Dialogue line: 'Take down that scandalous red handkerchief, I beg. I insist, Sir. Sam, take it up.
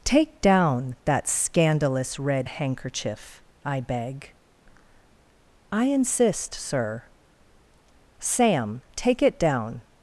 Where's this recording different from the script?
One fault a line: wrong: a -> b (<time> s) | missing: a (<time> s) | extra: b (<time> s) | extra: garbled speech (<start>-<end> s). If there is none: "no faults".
wrong: up -> down (9.4 s)